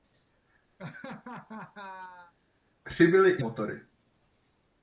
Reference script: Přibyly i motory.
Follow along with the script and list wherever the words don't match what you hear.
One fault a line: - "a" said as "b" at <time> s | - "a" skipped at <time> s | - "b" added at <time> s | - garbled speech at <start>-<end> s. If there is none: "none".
none